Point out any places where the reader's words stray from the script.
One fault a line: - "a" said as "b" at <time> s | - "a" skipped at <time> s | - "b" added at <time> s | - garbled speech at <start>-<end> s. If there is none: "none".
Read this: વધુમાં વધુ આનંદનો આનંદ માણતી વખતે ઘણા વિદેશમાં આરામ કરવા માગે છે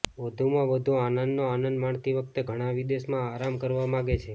none